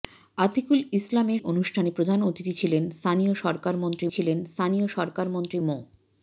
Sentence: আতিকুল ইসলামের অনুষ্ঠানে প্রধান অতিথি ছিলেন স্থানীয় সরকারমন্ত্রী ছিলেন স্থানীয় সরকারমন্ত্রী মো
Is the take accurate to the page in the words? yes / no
yes